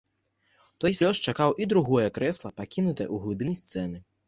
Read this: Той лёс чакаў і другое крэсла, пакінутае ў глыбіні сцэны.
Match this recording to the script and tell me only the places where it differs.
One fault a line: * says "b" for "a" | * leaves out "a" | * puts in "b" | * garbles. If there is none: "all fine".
all fine